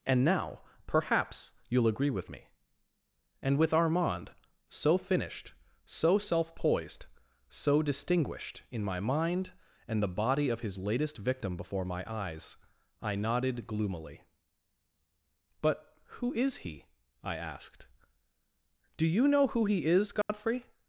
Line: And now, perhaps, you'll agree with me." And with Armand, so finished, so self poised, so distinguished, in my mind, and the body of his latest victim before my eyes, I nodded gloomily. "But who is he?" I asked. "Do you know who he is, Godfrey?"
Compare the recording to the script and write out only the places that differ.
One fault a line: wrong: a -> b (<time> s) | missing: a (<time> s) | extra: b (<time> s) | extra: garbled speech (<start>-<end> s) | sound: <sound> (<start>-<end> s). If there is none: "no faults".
sound: dropout (20.2-20.3 s)